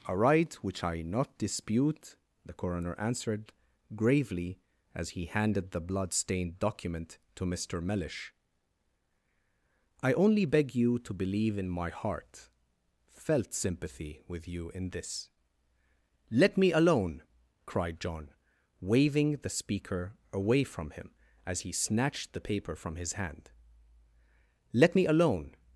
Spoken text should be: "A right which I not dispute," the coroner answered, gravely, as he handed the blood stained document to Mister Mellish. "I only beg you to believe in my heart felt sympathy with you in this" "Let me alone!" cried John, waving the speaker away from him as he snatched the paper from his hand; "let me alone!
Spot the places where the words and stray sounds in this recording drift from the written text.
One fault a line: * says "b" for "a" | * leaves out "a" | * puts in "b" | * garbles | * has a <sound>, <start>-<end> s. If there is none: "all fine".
all fine